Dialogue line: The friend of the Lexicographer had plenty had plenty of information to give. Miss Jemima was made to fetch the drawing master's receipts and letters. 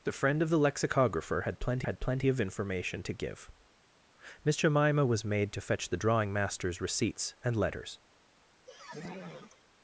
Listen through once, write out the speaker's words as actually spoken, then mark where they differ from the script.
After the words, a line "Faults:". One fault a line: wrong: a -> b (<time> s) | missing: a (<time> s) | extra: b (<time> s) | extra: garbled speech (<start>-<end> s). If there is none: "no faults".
The friend of the Lexicographer had plenty had plenty of information to give. Miss Jemima was made to fetch the drawing master's receipts and letters.
Faults:
no faults